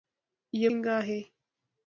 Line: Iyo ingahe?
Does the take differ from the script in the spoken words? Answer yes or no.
no